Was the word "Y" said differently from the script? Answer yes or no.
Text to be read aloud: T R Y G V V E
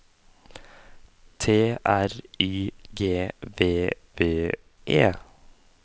no